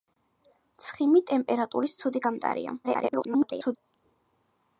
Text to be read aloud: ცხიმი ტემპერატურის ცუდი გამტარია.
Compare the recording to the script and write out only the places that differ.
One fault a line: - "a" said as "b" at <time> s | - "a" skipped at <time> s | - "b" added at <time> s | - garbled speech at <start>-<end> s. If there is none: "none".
- garbled speech at 2.8-3.8 s